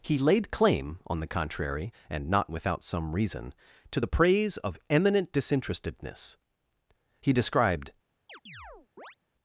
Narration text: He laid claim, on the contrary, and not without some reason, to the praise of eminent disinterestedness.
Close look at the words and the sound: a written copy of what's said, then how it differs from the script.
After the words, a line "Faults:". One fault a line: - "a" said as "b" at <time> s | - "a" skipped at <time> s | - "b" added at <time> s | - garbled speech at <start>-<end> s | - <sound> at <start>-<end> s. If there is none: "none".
He laid claim, on the contrary, and not without some reason, to the praise of eminent disinterestedness. He described
Faults:
- "He described" added at 7.2 s
- chirp at 8.3-9.2 s